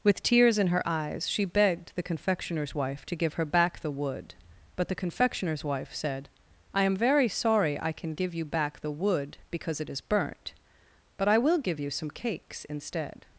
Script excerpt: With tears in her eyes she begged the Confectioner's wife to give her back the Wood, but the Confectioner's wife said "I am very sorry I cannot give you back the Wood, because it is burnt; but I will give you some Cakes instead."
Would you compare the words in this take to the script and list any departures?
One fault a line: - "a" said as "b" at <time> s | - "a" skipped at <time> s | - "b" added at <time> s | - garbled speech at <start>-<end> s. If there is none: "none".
- "cannot" said as "can" at 7.9 s